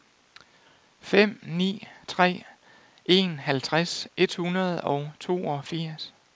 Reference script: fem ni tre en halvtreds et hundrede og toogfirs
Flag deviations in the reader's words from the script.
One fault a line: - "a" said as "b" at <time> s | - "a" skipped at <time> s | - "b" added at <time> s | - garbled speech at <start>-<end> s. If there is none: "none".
none